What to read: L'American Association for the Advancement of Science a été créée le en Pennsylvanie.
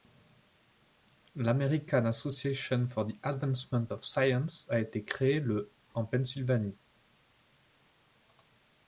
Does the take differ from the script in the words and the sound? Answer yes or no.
no